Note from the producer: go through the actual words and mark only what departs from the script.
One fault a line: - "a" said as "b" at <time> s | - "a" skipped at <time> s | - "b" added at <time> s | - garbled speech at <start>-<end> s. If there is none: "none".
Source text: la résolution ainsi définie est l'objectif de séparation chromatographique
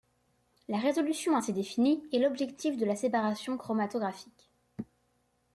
- "la" added at 2.8 s